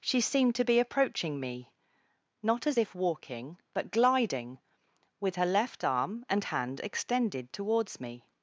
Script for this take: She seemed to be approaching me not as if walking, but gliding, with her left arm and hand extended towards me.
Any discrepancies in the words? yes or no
no